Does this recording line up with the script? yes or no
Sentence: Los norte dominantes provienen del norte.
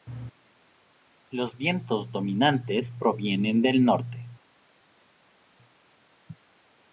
no